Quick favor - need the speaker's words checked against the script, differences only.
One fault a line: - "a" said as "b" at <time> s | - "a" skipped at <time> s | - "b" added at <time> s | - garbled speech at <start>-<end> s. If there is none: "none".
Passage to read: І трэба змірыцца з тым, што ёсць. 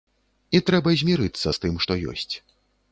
none